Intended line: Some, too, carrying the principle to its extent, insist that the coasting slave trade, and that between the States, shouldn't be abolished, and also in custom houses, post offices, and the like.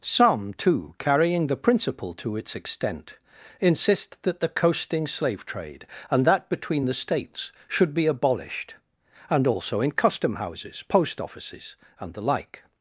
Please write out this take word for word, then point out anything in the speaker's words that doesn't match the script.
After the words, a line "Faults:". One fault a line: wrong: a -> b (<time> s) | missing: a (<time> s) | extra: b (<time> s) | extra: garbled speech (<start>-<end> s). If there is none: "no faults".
Some, too, carrying the principle to its extent, insist that the coasting slave trade, and that between the States, should be abolished, and also in custom houses, post offices, and the like.
Faults:
wrong: shouldn't -> should (7.7 s)